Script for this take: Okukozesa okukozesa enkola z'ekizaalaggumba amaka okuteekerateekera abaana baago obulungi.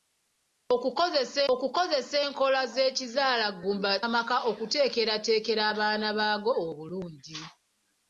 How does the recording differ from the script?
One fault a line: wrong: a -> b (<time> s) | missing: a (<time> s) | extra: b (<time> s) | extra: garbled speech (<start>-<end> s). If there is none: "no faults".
no faults